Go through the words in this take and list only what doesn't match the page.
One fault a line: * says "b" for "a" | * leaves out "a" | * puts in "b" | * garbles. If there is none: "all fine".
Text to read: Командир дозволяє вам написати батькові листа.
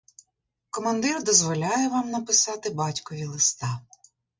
all fine